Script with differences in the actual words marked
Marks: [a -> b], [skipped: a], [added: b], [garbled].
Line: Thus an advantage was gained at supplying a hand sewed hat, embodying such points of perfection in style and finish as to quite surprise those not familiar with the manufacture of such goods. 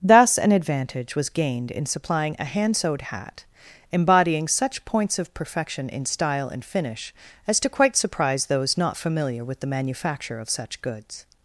Thus an advantage was gained [at -> in] supplying a hand sewed hat, embodying such points of perfection in style and finish as to quite surprise those not familiar with the manufacture of such goods.